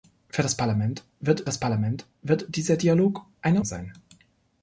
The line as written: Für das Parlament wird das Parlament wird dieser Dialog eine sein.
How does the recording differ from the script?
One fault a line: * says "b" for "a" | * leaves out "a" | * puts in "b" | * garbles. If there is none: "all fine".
all fine